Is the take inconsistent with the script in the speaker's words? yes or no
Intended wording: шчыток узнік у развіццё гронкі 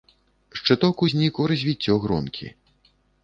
no